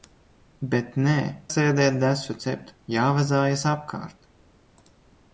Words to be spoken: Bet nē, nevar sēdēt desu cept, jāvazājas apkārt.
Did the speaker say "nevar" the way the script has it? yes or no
no